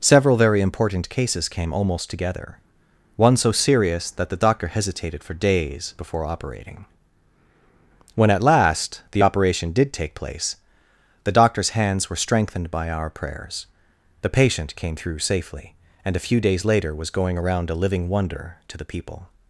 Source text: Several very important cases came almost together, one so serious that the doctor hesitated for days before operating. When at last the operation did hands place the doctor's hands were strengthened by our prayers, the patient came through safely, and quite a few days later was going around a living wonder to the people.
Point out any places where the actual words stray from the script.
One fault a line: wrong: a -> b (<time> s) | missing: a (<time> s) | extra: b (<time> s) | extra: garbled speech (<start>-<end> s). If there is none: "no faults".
wrong: hands -> take (9.9 s)
missing: quite (16.1 s)